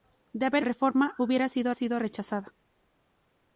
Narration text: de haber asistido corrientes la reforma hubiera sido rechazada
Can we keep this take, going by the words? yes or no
no